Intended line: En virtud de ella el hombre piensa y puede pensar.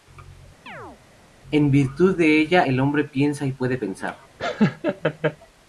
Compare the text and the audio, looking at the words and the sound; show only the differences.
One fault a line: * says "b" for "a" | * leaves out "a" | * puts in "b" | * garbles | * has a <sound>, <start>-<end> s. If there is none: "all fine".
* has a chirp, 0.7-1.0 s
* has a laugh, 4.4-5.4 s